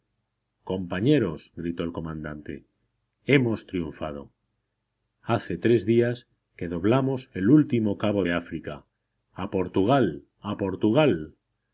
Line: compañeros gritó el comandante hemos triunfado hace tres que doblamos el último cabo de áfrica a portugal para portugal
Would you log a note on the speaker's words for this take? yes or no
yes